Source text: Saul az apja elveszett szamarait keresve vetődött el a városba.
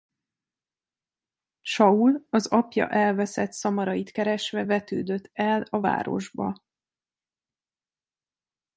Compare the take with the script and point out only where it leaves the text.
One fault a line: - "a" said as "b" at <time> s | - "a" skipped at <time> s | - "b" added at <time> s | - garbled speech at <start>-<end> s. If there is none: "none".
none